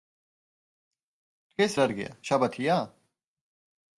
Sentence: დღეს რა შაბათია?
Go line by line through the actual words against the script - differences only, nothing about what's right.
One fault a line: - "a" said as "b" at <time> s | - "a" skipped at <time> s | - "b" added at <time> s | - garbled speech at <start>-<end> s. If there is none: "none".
- "დღეა" added at 1.9 s